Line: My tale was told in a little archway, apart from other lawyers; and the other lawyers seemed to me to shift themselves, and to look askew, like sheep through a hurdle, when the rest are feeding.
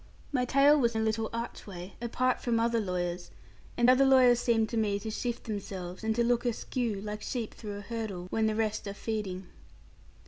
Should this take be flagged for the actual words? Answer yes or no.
yes